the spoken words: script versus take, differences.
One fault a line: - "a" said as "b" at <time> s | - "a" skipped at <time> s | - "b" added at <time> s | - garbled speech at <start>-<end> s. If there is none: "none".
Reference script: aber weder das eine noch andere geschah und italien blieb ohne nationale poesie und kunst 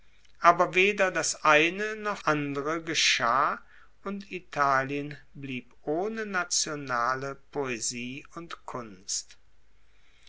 none